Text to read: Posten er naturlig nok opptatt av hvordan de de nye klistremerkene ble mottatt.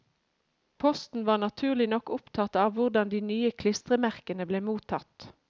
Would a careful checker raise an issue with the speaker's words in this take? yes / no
yes